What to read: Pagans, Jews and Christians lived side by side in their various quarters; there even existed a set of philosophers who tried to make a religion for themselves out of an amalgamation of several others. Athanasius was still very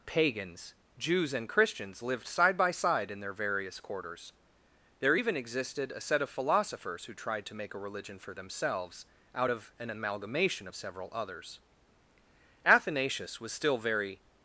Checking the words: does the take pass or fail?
pass